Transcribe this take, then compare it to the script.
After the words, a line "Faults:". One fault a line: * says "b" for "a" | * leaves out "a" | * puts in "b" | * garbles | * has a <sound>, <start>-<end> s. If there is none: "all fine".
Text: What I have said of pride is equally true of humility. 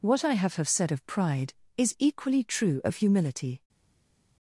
What I have have said of pride is equally true of humility.
Faults:
* puts in "have"